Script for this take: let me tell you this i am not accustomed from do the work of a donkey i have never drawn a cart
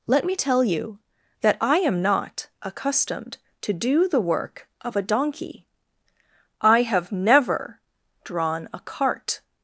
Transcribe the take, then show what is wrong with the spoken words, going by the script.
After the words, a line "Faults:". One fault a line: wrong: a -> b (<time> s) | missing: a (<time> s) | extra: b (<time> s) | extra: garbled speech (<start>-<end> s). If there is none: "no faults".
let me tell you that i am not accustomed to do the work of a donkey i have never drawn a cart
Faults:
wrong: this -> that (1.4 s)
wrong: from -> to (3.6 s)